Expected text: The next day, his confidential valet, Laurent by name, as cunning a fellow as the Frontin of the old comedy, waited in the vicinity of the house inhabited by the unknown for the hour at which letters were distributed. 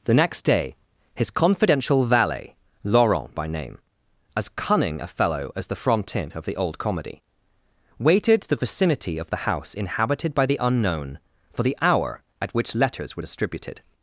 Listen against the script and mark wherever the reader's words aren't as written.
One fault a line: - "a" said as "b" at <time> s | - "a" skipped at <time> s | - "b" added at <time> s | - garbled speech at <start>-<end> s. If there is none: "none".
- "in" skipped at 8.4 s